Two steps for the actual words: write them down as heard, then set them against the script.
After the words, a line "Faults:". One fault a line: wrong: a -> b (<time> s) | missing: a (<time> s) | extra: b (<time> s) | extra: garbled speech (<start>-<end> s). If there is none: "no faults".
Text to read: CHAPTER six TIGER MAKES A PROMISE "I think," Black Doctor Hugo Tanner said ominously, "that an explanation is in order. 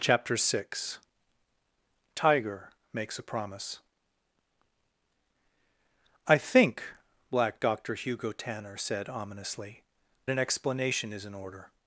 CHAPTER six TIGER MAKES A PROMISE "I think," Black Doctor Hugo Tanner said ominously, "an explanation is in order.
Faults:
missing: that (9.8 s)